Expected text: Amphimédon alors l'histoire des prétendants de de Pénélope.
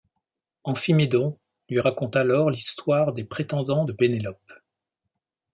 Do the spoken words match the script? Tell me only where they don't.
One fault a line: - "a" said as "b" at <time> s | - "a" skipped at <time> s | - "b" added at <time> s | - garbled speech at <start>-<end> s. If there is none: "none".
- "lui raconte" added at 1.7 s
- "de" skipped at 3.9 s